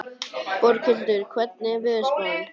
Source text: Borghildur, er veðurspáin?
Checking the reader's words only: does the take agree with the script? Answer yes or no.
no